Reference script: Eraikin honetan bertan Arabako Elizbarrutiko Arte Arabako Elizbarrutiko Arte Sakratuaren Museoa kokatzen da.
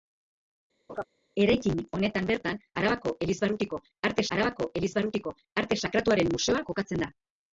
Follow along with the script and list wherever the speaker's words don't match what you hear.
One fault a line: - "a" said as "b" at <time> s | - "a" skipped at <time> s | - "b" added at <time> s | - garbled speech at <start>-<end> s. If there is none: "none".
none